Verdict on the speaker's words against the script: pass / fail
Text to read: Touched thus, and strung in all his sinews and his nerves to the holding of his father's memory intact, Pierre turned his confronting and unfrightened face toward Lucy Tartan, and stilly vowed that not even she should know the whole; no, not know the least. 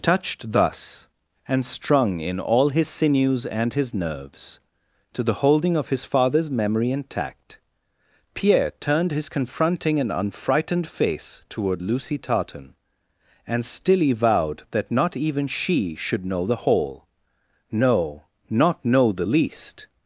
pass